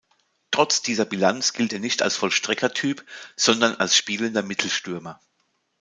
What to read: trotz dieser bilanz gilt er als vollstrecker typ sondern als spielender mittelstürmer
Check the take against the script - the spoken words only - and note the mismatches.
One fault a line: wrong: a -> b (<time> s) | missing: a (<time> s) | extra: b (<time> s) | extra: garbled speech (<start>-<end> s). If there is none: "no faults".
extra: nicht (1.8 s)